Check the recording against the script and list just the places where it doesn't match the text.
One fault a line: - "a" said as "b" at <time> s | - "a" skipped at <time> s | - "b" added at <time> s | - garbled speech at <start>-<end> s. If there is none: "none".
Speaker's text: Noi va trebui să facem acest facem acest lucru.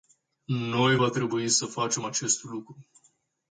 - "facem acest" skipped at 2.4 s